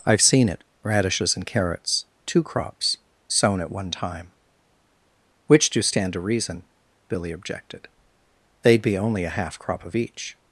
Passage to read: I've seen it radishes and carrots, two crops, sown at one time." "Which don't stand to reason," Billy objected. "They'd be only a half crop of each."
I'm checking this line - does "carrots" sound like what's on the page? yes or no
yes